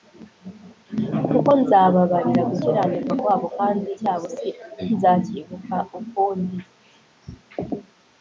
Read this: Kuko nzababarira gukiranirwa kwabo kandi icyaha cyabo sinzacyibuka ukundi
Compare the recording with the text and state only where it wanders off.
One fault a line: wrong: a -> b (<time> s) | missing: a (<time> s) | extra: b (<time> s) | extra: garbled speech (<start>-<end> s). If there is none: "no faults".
missing: icyaha (3.9 s)